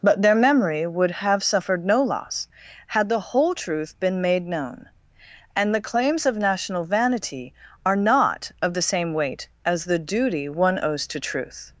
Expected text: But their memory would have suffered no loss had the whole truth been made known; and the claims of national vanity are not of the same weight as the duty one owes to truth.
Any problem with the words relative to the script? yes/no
no